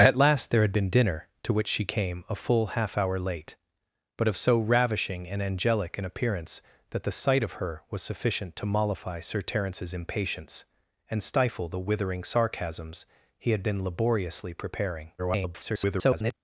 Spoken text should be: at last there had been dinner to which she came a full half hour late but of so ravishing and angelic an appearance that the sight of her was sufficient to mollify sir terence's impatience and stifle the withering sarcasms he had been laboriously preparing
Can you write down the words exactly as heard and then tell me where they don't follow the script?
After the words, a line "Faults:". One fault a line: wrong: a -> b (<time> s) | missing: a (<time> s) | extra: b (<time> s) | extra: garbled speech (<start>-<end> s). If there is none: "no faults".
at last there had been dinner to which she came a full half hour late but of so ravishing and angelic an appearance that the sight of her was sufficient to mollify sir terence's impatience and stifle the withering sarcasms he had been laboriously preparing [garbled]
Faults:
extra: garbled speech (15.2-16.3 s)